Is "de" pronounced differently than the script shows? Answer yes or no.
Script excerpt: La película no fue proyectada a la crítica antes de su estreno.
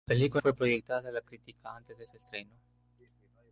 no